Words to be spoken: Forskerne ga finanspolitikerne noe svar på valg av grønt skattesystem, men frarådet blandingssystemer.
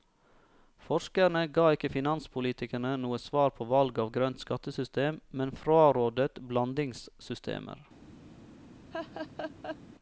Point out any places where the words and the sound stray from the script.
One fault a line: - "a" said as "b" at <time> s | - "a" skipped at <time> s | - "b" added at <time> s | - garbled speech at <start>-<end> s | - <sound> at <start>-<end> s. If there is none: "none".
- "ikke" added at 1.8 s
- laugh at 8.9-9.8 s